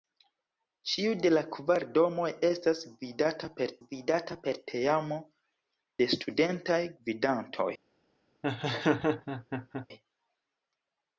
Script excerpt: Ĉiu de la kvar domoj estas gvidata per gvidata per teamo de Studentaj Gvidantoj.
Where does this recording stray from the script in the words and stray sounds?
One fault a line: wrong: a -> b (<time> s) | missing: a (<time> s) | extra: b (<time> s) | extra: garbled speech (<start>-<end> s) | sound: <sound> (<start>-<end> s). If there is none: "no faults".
sound: laugh (8.4-9.9 s)